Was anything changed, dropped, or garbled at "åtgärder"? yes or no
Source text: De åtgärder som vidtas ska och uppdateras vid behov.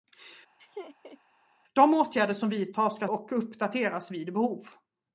no